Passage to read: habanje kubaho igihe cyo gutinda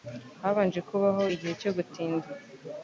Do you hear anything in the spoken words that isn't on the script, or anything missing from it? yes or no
no